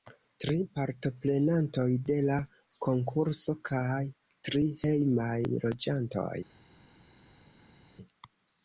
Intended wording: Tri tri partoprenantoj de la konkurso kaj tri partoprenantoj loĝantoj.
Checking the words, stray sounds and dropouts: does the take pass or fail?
fail